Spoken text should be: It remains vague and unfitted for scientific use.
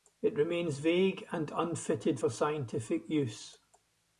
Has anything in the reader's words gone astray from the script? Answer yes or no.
no